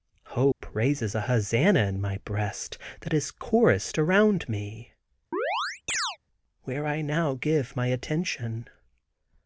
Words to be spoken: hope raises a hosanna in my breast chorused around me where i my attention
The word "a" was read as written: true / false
true